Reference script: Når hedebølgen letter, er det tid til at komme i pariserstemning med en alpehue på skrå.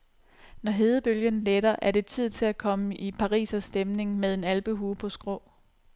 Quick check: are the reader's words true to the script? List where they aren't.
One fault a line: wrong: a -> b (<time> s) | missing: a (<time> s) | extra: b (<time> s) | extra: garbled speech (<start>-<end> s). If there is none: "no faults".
no faults